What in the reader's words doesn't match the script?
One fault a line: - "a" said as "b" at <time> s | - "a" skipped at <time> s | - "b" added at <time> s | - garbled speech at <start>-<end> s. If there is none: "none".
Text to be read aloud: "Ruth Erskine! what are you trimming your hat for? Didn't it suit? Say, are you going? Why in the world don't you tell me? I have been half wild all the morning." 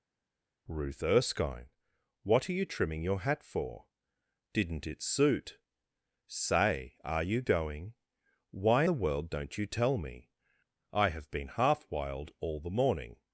- "in" skipped at 8.8 s